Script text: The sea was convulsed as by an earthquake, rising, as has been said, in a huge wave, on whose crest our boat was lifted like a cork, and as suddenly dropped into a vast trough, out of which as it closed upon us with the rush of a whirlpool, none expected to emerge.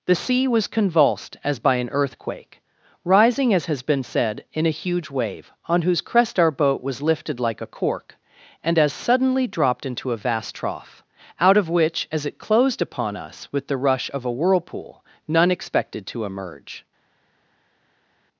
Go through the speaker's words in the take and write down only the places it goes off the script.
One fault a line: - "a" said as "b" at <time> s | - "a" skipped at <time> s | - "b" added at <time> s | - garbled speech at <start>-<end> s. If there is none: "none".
none